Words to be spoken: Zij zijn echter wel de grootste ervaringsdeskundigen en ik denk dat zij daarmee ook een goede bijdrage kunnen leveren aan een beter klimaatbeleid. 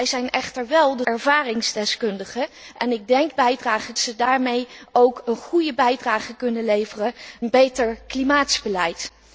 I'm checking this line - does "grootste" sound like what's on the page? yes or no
no